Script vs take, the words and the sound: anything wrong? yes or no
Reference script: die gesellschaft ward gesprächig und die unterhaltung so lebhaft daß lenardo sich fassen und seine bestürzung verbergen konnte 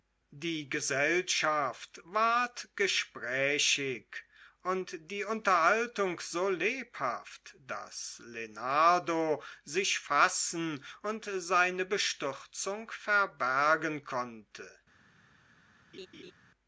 yes